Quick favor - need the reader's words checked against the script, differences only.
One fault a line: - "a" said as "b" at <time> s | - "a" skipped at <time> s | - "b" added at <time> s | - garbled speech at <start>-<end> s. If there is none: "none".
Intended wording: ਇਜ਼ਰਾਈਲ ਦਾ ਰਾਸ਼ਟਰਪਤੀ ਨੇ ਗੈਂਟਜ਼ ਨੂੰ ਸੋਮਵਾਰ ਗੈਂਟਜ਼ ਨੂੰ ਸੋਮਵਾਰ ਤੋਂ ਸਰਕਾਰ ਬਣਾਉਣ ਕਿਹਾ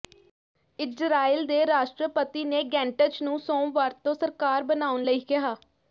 - "ਦਾ" said as "ਦੇ" at 1.5 s
- "ਗੈਂਟਜ਼ ਨੂੰ ਸੋਮਵਾਰ" skipped at 3.9 s
- "ਲਈ" added at 5.0 s